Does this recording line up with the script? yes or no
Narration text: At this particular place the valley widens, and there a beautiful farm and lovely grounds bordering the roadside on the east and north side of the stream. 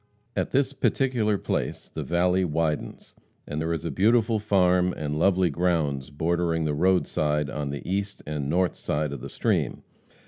no